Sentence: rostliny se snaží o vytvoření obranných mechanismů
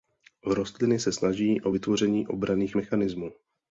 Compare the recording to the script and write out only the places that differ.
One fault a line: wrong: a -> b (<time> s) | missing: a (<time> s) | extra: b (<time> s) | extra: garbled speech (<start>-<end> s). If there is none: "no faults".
no faults